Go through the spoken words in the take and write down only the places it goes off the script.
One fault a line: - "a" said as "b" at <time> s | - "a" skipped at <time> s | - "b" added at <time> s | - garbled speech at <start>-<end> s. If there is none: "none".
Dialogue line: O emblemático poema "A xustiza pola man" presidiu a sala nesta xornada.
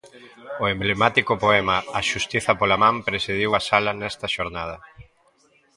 none